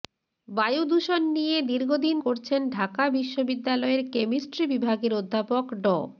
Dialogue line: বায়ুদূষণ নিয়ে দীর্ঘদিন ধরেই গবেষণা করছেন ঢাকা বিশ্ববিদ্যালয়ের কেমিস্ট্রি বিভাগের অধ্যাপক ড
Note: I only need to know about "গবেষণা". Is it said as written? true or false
false